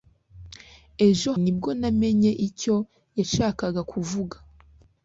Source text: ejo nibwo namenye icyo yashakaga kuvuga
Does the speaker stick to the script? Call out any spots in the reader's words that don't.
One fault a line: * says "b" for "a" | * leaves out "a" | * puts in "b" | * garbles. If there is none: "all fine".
all fine